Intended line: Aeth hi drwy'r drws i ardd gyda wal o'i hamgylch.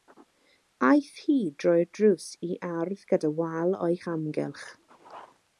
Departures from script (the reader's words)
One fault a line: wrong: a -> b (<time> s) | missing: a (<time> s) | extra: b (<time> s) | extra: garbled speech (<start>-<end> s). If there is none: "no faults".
no faults